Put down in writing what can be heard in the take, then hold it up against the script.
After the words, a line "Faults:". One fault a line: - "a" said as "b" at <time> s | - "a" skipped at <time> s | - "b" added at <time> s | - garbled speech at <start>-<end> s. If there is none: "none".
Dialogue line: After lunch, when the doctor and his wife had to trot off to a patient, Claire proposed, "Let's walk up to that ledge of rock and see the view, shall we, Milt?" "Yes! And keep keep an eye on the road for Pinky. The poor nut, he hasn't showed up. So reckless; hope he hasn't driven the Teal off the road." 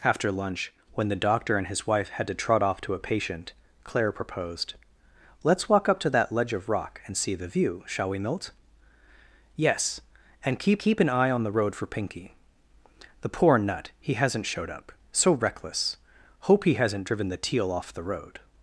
After lunch, when the doctor and his wife had to trot off to a patient, Claire proposed, "Let's walk up to that ledge of rock and see the view, shall we, Milt?" "Yes! And keep keep an eye on the road for Pinky. The poor nut, he hasn't showed up. So reckless; hope he hasn't driven the Teal off the road."
Faults:
none